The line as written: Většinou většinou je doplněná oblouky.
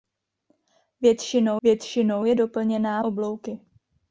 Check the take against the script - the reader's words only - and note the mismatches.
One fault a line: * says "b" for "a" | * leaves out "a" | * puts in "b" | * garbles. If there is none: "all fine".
all fine